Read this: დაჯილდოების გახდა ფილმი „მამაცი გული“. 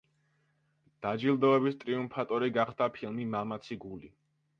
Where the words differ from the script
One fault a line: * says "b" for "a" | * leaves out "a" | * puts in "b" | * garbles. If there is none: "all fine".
* puts in "ტრიუმფატორი"